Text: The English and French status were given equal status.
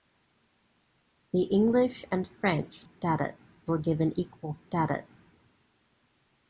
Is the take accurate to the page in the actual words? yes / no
yes